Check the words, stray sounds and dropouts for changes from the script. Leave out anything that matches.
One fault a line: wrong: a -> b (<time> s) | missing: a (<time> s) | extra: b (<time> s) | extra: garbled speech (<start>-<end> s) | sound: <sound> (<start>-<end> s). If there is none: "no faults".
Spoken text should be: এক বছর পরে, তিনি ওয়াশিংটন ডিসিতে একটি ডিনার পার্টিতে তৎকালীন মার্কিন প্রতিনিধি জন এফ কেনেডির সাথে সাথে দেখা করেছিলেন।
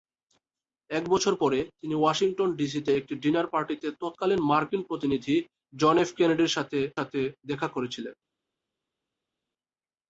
no faults